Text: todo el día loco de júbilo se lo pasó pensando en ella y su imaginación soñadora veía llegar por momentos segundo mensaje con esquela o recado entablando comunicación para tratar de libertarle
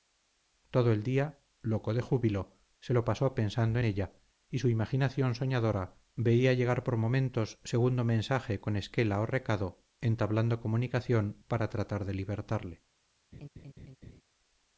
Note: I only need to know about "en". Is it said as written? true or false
false